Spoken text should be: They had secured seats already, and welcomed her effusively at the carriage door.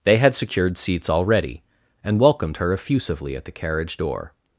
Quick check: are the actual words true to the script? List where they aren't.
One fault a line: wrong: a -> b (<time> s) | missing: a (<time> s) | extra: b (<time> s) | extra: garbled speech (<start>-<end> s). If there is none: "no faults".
no faults